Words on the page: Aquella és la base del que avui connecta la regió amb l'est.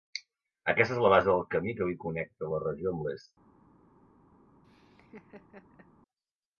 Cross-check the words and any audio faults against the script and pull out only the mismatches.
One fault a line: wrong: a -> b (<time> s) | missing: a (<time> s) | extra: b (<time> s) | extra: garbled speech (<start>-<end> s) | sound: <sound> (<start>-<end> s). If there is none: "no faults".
wrong: Aquella -> Aquesta (0.7 s)
extra: camí (1.6 s)
sound: laugh (4.6-5.9 s)